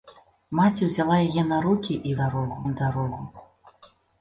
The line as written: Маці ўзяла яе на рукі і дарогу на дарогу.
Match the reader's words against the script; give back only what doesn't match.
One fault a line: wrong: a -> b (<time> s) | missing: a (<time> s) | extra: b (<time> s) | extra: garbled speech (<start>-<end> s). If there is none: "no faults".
no faults